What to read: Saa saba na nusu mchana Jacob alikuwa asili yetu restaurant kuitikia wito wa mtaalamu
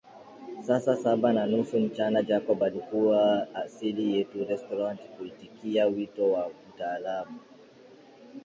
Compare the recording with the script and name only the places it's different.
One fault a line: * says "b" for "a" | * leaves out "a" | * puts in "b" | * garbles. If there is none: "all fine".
all fine